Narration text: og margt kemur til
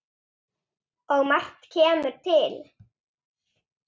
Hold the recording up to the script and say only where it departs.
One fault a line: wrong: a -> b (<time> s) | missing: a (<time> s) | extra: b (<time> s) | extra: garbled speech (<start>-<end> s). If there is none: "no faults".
no faults